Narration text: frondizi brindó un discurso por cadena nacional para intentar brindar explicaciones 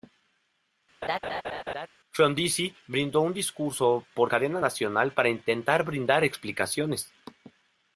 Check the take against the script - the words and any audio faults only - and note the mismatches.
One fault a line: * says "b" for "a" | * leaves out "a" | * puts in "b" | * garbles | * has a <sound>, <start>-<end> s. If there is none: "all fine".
* has a laugh, 1.0-1.9 s